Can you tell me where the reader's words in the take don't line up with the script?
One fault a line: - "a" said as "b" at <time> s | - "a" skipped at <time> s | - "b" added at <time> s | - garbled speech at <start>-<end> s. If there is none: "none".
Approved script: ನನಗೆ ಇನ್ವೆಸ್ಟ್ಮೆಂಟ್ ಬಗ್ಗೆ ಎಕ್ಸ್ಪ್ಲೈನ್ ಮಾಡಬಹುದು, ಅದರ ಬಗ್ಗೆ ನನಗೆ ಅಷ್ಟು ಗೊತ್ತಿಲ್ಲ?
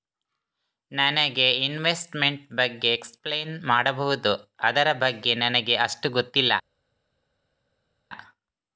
none